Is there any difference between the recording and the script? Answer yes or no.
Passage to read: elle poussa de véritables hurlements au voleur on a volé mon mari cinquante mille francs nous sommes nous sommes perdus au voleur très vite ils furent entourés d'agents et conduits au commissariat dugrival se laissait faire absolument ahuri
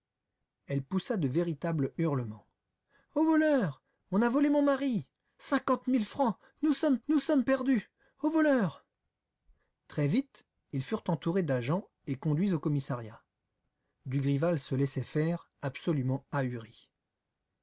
no